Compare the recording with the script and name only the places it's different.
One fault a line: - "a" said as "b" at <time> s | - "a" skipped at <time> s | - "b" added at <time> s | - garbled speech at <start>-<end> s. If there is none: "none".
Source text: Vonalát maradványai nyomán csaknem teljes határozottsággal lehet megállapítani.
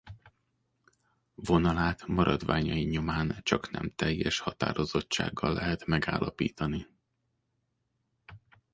none